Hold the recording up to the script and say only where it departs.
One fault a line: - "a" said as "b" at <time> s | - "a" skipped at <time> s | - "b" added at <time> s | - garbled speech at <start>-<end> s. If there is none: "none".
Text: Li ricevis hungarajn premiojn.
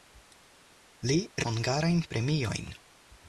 - "ricevis" skipped at 1.2 s